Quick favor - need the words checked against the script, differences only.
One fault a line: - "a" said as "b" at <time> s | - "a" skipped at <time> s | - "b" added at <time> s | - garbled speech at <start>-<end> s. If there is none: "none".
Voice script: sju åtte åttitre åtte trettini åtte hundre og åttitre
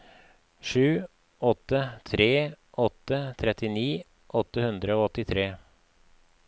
- "åttitre" said as "tre" at 2.0 s